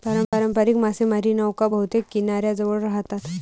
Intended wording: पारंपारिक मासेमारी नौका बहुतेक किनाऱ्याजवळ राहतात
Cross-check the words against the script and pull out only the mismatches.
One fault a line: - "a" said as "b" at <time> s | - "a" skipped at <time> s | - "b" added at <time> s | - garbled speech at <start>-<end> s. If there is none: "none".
none